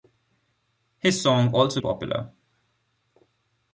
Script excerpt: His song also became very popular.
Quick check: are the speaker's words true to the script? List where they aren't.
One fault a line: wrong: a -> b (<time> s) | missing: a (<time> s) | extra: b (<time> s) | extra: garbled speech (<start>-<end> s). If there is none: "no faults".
missing: became very (1.8 s)